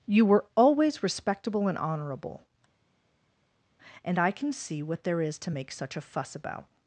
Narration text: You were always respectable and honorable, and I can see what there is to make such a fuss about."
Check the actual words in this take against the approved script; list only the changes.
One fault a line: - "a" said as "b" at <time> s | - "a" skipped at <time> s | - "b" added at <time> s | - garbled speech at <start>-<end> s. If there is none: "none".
none